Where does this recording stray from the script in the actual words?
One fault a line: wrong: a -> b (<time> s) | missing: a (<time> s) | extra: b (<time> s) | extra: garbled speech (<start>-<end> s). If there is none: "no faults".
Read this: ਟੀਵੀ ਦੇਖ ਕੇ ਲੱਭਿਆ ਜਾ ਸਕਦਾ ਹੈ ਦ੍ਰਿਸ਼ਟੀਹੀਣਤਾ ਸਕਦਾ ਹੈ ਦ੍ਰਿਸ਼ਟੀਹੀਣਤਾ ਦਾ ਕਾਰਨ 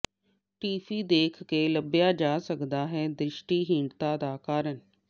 missing: ਸਕਦਾ ਹੈ ਦ੍ਰਿਸ਼ਟੀਹੀਣਤਾ (4.2 s)